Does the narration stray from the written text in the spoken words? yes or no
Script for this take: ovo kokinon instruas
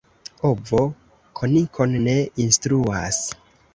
yes